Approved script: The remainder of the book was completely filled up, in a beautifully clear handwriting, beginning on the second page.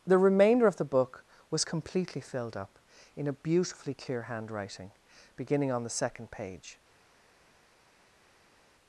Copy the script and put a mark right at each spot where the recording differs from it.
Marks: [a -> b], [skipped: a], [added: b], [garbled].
The remainder of the book was completely filled up, in a beautifully clear handwriting, beginning on the second page.